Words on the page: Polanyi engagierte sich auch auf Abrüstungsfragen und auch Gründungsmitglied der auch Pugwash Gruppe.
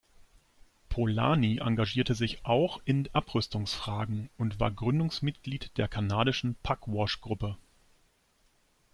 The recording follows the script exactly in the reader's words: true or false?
false